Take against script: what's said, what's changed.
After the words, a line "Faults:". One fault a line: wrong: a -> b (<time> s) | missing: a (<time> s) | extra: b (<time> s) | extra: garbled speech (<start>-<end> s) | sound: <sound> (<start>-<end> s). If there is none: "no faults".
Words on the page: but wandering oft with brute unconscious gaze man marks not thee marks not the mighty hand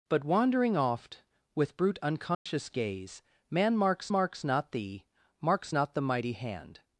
but wandering oft with brute unconscious gaze man marks marks not thee marks not the mighty hand
Faults:
sound: dropout (2.3-2.5 s)
extra: marks (4.1 s)